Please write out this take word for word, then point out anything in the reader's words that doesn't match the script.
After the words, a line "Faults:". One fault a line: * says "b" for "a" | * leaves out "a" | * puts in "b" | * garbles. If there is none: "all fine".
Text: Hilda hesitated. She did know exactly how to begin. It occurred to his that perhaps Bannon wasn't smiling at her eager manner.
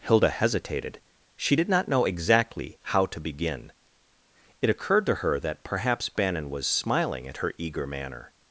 Hilda hesitated. She did not know exactly how to begin. It occurred to her that perhaps Bannon was smiling at her eager manner.
Faults:
* puts in "not"
* says "her" for "his"
* says "was" for "wasn't"